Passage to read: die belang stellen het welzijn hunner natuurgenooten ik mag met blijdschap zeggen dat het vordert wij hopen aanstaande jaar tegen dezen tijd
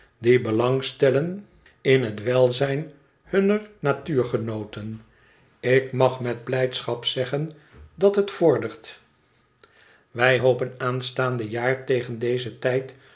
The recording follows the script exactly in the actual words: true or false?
false